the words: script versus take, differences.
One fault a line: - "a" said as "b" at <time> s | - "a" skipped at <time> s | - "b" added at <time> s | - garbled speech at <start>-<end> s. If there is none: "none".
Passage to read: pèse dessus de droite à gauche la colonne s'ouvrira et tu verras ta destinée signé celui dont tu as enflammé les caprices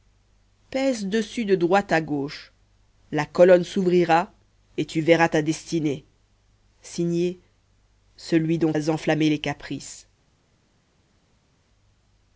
- "tu" skipped at 8.7 s